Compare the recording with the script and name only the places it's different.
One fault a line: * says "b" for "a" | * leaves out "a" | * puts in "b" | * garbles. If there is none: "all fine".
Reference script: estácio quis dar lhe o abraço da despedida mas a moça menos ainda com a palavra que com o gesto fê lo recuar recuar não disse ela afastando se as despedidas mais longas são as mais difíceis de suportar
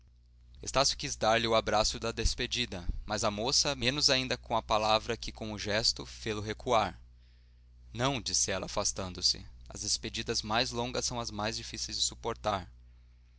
* leaves out "recuar"